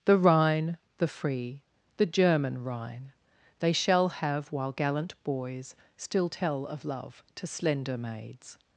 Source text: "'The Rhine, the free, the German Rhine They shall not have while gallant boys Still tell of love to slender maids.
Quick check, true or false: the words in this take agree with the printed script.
false